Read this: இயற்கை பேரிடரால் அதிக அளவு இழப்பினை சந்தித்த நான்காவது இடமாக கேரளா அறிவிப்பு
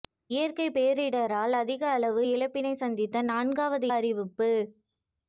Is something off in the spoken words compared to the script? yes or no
yes